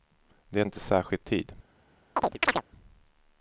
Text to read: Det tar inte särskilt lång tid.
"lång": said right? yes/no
no